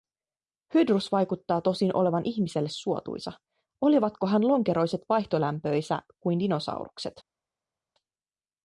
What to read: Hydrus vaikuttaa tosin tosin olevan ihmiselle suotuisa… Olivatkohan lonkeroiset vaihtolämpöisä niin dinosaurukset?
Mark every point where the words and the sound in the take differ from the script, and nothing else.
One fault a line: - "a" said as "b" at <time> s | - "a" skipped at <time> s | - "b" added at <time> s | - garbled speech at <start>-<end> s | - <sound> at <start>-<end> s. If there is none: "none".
- "tosin" skipped at 1.9 s
- "niin" said as "kuin" at 6.2 s